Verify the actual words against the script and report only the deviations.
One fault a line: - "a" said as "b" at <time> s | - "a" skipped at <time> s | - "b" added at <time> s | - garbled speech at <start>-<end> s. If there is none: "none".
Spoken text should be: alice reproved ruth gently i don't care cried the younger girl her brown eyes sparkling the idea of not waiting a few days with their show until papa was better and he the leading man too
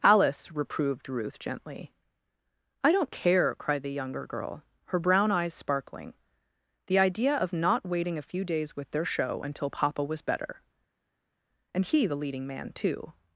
none